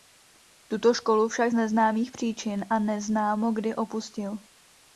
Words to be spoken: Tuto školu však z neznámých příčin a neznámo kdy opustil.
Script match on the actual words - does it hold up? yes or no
yes